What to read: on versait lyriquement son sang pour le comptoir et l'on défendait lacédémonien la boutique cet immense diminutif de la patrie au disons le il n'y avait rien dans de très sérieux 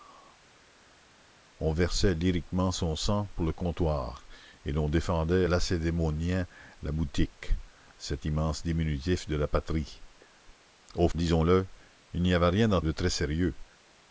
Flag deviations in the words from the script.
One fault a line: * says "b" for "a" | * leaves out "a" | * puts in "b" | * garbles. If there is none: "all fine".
all fine